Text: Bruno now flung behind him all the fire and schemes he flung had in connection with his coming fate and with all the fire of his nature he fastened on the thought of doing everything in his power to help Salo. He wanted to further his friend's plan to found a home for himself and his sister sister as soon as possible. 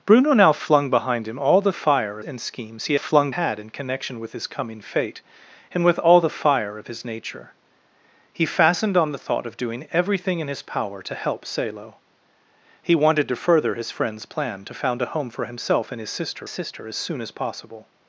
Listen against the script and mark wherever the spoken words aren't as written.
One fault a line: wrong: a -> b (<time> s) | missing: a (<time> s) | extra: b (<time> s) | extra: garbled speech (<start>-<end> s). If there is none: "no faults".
no faults